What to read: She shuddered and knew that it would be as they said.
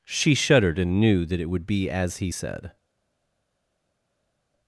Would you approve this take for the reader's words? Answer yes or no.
no